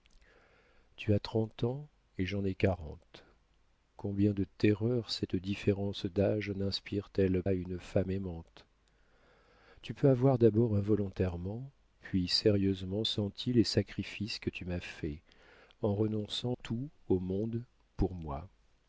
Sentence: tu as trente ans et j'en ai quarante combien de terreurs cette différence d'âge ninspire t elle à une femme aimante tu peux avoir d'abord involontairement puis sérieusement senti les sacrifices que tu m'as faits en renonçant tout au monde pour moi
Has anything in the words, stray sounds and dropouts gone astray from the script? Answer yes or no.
no